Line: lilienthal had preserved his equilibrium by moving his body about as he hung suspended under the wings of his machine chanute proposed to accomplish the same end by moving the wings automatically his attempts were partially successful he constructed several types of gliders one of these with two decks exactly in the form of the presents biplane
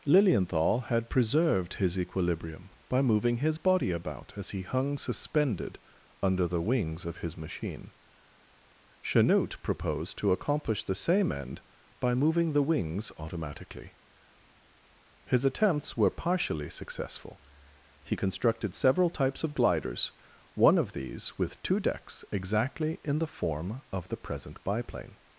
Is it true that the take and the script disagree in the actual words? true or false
true